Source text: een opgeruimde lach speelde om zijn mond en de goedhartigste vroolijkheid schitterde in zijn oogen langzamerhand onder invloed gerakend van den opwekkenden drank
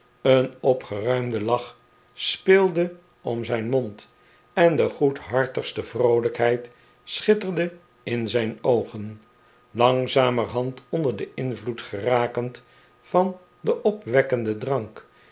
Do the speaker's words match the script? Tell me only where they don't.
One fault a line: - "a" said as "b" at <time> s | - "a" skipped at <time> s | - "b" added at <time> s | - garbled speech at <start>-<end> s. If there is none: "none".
- "den" added at 11.2 s